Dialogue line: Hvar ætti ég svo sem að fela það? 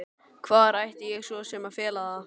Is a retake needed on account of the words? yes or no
no